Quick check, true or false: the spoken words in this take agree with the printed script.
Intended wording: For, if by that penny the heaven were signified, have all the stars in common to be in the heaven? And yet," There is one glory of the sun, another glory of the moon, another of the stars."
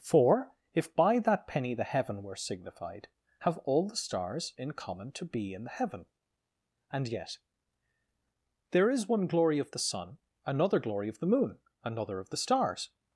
true